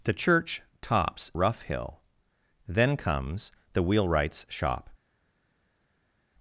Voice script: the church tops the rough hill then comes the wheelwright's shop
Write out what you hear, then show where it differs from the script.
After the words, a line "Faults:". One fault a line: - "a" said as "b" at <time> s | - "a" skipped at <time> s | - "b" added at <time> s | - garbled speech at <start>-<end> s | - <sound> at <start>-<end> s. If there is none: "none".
the church tops rough hill then comes the wheelwright's shop
Faults:
- "the" skipped at 1.3 s